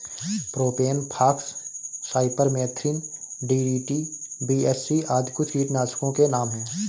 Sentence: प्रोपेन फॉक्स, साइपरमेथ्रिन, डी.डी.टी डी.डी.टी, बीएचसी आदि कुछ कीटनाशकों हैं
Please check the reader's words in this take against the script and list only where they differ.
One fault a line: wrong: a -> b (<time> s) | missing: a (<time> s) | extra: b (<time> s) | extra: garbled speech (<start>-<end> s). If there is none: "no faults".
missing: डी.डी.टी (4.0 s)
extra: के नाम (6.1 s)